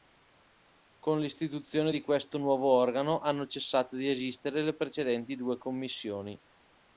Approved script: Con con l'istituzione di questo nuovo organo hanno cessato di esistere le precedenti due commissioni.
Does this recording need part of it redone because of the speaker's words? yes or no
yes